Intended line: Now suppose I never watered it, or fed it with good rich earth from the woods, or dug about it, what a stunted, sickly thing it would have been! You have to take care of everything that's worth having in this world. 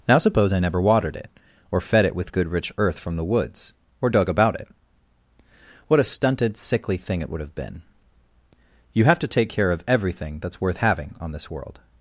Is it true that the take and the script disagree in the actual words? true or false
true